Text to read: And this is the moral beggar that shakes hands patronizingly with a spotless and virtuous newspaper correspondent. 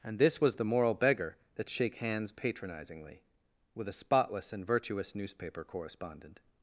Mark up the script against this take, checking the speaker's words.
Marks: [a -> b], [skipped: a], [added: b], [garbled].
And this [is -> was] the moral beggar that [shakes -> shake] hands patronizingly with a spotless and virtuous newspaper correspondent.